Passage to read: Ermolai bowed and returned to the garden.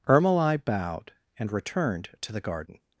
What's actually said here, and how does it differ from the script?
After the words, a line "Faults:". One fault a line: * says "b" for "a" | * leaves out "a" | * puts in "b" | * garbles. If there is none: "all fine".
Ermolai bowed and returned to the garden.
Faults:
all fine